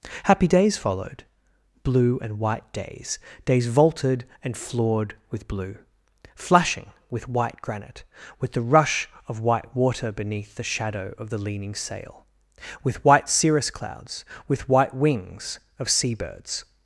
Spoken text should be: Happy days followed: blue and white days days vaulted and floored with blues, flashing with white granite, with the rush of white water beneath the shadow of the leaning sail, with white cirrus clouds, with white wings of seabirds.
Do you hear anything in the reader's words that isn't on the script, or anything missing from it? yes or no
yes